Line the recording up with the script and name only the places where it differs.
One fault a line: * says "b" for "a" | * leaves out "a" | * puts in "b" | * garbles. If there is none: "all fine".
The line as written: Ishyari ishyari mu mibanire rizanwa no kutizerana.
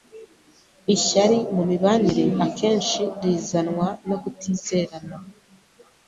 * leaves out "ishyari"
* puts in "akenshi"